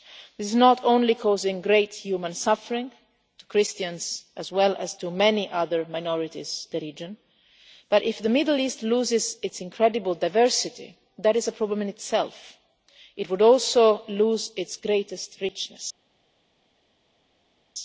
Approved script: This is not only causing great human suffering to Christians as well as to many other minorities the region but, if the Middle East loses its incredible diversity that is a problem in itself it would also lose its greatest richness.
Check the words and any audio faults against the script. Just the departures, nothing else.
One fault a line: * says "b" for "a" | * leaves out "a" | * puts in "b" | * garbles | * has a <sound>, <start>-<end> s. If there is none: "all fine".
all fine